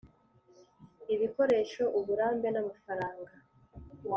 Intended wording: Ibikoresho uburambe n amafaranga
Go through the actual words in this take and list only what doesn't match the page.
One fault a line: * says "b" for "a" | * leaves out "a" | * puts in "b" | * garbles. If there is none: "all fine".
all fine